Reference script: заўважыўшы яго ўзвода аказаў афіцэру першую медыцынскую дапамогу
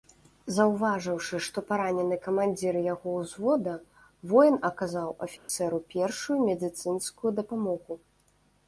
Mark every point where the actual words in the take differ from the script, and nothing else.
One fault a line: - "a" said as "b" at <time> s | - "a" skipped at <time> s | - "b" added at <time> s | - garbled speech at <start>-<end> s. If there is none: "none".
- "што паранены камандзір" added at 1.5 s
- "воін" added at 4.3 s